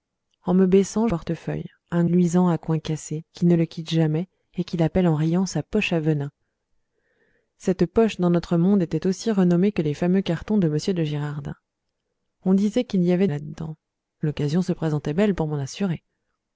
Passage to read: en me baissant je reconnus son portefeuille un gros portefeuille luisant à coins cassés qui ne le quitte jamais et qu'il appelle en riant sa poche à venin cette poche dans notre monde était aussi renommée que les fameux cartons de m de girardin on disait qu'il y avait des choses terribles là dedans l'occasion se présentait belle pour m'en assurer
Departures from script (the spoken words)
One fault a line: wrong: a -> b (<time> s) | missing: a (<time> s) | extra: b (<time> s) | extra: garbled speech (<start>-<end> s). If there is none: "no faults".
missing: je reconnus son (1.1 s)
missing: gros portefeuille (2.0 s)
missing: des choses terribles (13.3 s)